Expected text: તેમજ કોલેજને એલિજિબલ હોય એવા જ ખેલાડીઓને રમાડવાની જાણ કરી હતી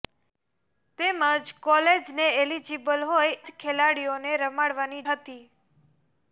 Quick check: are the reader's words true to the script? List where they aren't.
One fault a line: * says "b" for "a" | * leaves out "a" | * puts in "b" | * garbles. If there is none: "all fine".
* leaves out "એવા"
* leaves out "જાણ કરી"